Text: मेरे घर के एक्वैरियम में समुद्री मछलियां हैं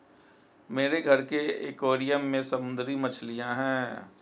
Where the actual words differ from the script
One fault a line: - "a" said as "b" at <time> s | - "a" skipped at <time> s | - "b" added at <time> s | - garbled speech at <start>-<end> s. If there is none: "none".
none